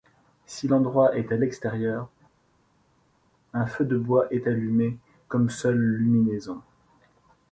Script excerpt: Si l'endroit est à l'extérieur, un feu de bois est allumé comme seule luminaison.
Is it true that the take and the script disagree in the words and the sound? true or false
false